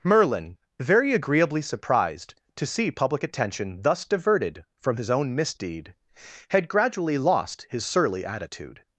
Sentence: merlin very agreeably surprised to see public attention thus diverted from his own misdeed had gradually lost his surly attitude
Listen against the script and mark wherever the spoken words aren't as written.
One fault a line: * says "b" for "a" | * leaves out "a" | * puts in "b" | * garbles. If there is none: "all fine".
all fine